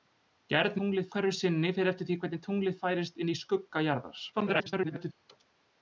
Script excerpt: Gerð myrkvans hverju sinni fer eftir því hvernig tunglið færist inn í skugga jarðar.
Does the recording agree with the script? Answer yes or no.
no